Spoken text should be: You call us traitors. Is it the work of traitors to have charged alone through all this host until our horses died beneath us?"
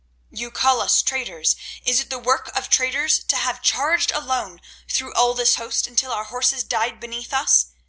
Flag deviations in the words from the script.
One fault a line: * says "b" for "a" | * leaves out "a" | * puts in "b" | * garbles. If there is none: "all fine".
all fine